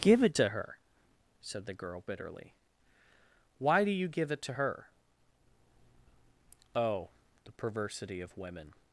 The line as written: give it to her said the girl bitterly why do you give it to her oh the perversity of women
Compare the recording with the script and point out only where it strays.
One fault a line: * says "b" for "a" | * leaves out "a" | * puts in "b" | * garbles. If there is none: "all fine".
all fine